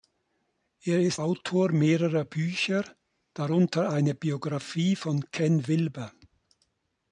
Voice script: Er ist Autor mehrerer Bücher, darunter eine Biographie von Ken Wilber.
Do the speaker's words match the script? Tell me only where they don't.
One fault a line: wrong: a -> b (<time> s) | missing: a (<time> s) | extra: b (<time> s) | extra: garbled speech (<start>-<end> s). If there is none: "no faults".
no faults